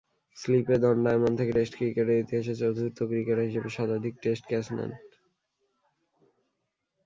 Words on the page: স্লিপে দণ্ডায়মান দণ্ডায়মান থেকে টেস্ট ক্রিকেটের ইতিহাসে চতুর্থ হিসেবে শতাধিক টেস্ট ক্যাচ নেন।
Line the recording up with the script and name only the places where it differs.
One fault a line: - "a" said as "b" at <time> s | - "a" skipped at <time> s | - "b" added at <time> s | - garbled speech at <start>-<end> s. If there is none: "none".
- "দণ্ডায়মান" skipped at 1.3 s
- "ক্রিকেটার" added at 3.0 s